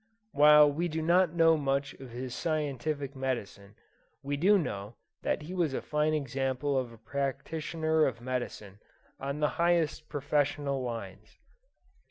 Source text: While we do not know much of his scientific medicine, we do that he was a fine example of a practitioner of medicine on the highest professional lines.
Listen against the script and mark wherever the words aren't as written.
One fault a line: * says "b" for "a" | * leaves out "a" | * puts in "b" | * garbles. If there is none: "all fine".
* puts in "know"